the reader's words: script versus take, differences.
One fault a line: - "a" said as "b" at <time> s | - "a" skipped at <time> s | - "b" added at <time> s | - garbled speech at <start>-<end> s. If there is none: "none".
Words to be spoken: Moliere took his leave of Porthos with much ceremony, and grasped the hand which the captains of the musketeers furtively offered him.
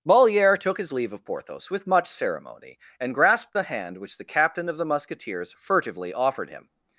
- "captains" said as "captain" at 4.3 s